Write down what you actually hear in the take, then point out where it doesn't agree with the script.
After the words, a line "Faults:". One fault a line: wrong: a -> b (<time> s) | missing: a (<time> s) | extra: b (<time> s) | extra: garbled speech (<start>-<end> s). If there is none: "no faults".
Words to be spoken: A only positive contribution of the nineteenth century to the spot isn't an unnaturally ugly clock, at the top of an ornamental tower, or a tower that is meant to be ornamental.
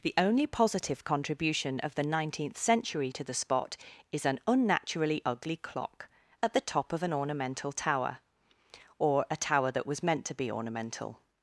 The only positive contribution of the nineteenth century to the spot is an unnaturally ugly clock, at the top of an ornamental tower, or a tower that was meant to be ornamental.
Faults:
wrong: A -> The (0.0 s)
wrong: isn't -> is (4.1 s)
wrong: is -> was (9.9 s)